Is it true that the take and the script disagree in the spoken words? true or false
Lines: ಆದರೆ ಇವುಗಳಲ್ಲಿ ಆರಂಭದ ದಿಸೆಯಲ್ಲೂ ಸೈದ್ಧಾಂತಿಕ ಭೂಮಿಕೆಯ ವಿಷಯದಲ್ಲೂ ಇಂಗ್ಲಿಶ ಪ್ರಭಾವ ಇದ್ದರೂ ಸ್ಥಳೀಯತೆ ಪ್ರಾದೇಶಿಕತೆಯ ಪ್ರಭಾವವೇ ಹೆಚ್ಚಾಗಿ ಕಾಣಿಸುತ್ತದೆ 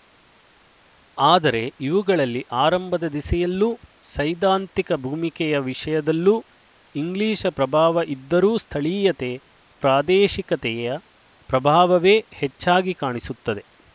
false